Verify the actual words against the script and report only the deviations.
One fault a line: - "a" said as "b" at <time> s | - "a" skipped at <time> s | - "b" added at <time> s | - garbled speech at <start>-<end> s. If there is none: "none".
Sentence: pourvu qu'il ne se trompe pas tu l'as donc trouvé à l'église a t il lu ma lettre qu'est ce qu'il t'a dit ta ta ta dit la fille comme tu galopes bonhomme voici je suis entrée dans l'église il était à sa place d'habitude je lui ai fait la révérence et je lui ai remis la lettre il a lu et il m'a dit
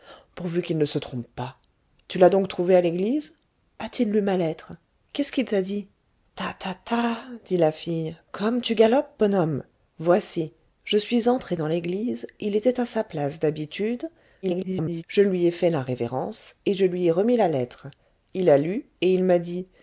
- garbled speech at 14.4-15.0 s